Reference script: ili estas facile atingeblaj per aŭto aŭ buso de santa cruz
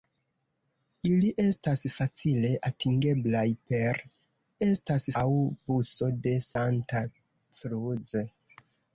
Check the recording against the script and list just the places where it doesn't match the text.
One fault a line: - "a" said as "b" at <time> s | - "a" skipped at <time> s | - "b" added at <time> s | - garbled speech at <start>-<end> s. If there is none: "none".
- "aŭto" said as "estas" at 4.7 s